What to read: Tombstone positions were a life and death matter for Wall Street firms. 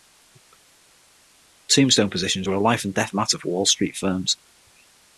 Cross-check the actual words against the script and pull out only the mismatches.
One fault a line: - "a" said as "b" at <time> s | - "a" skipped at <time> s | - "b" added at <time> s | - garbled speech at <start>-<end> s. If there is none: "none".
none